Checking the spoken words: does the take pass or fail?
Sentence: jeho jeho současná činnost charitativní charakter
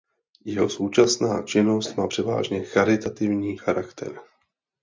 fail